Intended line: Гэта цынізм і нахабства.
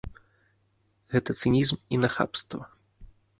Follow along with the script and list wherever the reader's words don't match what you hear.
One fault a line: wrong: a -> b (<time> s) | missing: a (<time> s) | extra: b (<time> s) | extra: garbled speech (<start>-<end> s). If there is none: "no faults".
no faults